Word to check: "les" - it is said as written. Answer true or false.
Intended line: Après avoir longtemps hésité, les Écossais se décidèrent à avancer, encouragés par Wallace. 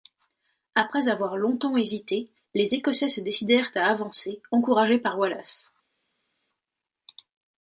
true